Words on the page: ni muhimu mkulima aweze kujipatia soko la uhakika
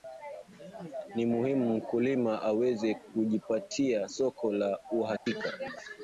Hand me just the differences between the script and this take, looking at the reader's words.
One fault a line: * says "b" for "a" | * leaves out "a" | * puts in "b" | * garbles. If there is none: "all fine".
all fine